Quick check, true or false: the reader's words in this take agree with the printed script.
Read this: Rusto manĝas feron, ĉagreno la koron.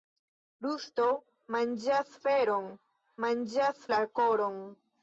false